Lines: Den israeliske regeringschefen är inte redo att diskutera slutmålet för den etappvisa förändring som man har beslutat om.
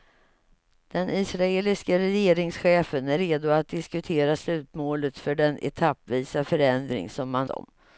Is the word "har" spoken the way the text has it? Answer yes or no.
no